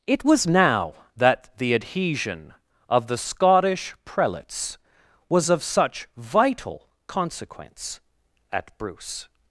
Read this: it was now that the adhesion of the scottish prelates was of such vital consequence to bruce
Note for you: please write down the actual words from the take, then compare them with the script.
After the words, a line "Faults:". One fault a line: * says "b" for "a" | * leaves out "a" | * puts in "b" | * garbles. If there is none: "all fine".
it was now that the adhesion of the scottish prelates was of such vital consequence at bruce
Faults:
* says "at" for "to"